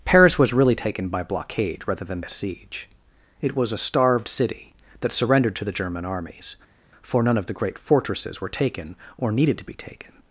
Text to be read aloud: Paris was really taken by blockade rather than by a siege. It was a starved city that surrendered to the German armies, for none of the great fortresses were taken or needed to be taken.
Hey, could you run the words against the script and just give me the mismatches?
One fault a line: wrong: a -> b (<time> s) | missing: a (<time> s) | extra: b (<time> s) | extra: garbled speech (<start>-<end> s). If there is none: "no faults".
missing: by (2.2 s)